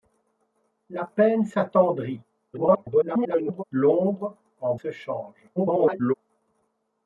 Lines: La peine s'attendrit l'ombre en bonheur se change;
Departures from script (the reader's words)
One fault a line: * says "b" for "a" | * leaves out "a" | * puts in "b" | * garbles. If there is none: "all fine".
* garbles
* leaves out "bonheur"
* garbles